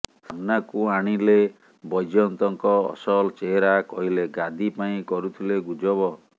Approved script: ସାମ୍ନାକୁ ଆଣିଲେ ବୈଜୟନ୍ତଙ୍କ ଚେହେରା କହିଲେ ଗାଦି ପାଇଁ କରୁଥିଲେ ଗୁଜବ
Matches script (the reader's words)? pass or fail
fail